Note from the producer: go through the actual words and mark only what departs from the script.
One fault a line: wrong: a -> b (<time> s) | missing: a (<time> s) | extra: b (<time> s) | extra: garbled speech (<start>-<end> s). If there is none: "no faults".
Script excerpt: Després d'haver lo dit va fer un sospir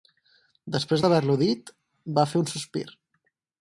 no faults